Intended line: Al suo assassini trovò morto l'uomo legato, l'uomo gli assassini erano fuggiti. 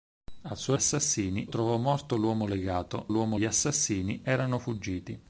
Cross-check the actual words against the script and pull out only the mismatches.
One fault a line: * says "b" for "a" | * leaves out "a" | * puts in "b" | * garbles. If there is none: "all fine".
all fine